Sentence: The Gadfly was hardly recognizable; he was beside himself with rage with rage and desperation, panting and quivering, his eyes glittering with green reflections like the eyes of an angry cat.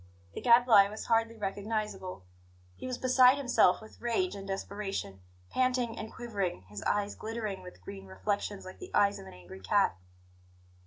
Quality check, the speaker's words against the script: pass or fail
fail